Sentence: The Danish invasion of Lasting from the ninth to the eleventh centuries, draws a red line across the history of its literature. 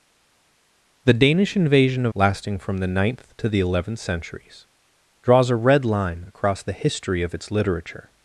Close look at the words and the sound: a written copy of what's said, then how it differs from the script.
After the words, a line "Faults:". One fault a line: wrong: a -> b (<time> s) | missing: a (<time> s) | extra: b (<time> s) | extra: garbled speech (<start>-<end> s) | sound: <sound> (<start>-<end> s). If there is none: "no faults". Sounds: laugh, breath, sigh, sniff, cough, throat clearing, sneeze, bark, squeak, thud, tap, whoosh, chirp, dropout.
The Danish invasion of Lasting from the ninth to the eleventh centuries, draws a red line across the history of its literature.
Faults:
no faults